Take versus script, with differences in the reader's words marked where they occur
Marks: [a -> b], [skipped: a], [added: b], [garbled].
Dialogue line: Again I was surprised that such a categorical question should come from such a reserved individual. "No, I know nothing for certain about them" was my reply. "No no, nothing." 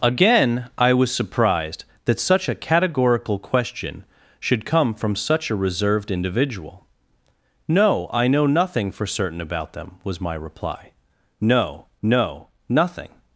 Again I was surprised that such a categorical question should come from such a reserved individual. "No, I know nothing for certain about them" was my reply. "No no, nothing."